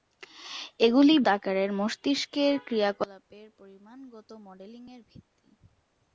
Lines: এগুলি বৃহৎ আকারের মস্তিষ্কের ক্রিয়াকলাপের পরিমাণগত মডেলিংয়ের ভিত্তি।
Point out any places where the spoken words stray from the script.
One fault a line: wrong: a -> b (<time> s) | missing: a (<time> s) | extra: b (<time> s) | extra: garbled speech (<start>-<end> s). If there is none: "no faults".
missing: বৃহৎ (1.1 s)